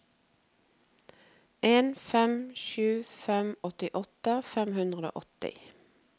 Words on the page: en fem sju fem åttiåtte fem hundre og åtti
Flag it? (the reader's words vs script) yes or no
no